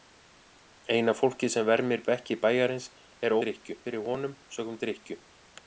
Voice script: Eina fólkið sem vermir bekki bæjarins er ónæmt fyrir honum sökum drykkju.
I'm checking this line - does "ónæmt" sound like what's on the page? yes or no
no